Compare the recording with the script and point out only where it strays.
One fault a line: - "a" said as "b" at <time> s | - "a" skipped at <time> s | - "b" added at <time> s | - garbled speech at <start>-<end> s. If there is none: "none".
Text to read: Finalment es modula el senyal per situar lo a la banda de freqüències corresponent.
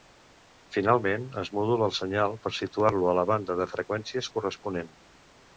none